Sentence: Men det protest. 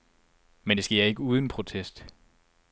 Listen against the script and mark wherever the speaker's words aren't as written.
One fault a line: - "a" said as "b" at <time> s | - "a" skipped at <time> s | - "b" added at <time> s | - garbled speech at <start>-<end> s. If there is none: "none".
- "sker ikke uden" added at 0.8 s